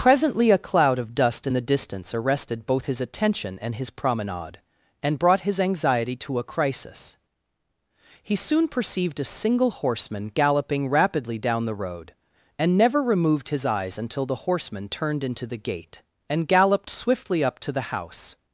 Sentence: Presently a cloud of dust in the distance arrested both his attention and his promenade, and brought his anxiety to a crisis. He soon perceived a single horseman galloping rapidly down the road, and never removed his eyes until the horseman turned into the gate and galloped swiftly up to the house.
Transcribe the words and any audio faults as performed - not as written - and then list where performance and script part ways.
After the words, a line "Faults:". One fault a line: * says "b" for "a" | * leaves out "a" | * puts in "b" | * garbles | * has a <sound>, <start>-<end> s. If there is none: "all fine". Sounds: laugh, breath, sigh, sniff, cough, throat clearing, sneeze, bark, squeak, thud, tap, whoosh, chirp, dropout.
Presently a cloud of dust in the distance arrested both his attention and his promenade, and brought his anxiety to a crisis. He soon perceived a single horseman galloping rapidly down the road, and never removed his eyes until the horseman turned into the gate and galloped swiftly up to the house.
Faults:
all fine